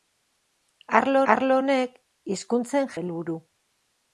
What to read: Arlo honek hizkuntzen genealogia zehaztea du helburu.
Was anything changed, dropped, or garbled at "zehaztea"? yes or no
yes